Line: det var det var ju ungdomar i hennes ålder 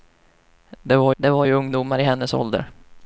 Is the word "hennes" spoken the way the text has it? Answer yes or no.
yes